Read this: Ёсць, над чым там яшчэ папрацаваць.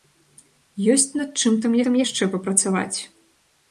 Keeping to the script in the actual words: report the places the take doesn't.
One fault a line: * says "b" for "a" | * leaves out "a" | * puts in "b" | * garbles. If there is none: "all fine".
* puts in "там"